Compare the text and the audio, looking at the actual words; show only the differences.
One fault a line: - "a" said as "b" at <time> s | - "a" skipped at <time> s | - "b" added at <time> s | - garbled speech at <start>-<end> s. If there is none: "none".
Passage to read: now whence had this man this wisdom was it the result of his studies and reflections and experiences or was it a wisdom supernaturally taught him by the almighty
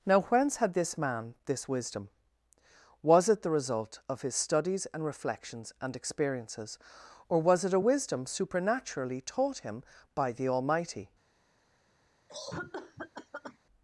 none